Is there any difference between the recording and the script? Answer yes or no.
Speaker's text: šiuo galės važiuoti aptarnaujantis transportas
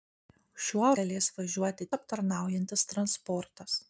no